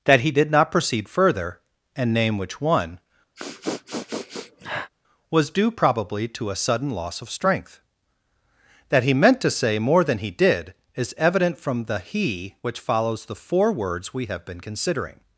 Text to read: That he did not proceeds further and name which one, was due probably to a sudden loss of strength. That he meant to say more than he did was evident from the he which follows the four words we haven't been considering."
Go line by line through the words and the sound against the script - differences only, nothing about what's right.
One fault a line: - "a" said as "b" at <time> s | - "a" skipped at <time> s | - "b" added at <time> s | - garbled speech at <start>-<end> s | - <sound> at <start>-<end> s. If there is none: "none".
- "proceeds" said as "proceed" at 0.7 s
- sniff at 3.3-4.9 s
- "was" said as "is" at 10.9 s
- "haven't" said as "have" at 14.3 s